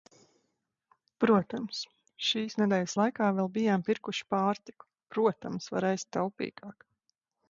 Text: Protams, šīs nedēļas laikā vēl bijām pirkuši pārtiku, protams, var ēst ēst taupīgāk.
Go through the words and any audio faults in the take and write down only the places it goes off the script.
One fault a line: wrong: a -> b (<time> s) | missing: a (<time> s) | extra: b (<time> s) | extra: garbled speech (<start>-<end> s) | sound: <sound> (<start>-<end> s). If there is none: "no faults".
missing: ēst (6.1 s)